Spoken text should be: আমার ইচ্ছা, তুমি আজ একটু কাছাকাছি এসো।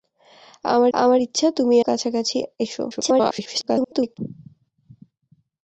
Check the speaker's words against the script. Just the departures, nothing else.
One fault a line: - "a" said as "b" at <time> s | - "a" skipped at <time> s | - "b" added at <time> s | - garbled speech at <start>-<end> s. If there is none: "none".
- "আমার" added at 0.9 s
- "আজ একটু" skipped at 1.8 s
- garbled speech at 2.9-4.2 s